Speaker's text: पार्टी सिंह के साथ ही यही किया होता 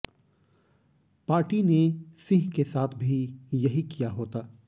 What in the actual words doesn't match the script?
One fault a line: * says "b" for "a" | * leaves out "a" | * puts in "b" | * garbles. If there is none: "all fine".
* puts in "ने"
* says "भी" for "ही"